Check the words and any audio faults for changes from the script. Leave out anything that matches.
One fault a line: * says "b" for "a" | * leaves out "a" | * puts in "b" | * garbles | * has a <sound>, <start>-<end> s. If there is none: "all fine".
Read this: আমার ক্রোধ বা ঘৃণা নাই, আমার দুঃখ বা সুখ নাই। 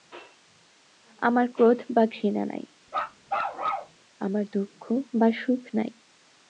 * has a bark, 2.9-4.0 s